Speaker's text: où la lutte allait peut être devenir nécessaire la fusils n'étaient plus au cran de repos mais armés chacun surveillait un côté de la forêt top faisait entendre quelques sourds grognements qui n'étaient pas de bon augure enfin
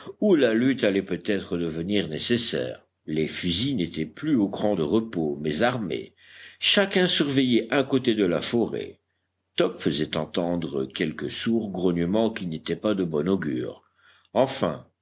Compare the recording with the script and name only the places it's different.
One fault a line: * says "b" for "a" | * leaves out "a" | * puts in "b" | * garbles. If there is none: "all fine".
* says "les" for "la"